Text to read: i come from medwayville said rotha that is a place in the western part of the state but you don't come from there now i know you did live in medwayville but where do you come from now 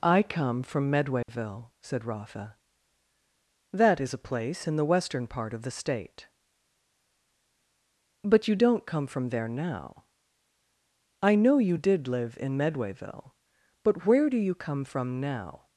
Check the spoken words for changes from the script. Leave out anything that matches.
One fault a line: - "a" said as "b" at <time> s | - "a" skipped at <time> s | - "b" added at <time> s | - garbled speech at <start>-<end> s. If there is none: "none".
none